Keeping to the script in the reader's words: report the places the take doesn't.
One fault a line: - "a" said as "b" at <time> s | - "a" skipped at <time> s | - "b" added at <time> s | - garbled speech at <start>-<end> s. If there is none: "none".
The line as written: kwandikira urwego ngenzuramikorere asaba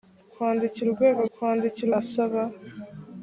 - "ngenzuramikorere" said as "kwandikira" at 1.3 s